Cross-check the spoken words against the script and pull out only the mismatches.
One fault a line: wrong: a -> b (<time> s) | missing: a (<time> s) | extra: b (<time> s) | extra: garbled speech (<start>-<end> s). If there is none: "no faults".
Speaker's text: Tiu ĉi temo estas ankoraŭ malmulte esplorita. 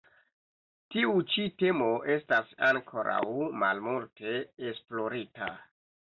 no faults